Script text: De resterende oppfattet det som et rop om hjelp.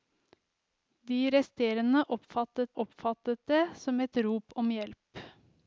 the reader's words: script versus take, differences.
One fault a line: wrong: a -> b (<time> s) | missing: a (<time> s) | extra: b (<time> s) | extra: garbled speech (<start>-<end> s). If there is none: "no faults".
extra: oppfattet (2.7 s)